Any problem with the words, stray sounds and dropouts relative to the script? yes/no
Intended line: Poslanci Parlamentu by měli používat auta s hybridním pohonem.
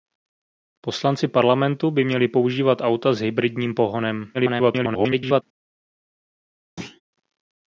yes